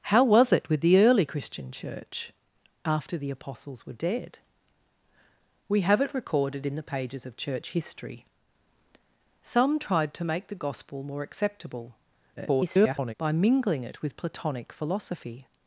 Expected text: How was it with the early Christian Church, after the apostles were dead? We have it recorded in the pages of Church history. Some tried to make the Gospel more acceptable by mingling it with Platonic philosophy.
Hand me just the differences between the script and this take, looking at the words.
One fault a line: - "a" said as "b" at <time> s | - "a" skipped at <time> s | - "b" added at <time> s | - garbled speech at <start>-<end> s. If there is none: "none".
- garbled speech at 12.4-13.1 s